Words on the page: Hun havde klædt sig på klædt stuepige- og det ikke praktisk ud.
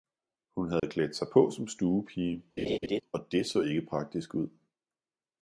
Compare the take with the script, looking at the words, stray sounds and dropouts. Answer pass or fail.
fail